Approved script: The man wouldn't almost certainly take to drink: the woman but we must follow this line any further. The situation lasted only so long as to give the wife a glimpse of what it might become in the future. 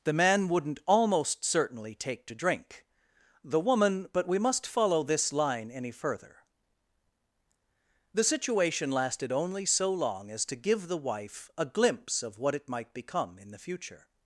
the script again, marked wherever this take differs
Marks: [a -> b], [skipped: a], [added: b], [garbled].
The man wouldn't almost certainly take to drink: the woman but we must follow this line any further. The situation lasted only so long as to give the wife a glimpse of what it might become in the future.